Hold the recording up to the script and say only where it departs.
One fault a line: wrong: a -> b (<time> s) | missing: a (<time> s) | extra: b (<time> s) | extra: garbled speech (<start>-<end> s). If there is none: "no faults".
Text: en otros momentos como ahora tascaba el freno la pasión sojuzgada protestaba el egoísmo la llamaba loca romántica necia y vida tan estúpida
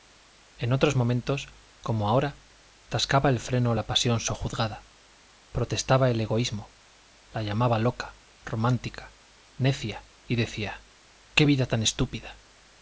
extra: decía qué (10.4 s)